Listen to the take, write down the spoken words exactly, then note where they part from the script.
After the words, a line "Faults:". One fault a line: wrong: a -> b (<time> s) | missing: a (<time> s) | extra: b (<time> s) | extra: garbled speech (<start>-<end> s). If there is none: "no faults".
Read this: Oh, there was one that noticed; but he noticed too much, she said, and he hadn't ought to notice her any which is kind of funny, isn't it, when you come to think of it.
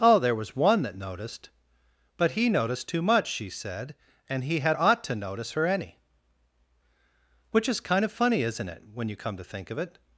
Oh, there was one that noticed; but he noticed too much, she said, and he had ought to notice her any which is kind of funny, isn't it, when you come to think of it.
Faults:
wrong: hadn't -> had (4.6 s)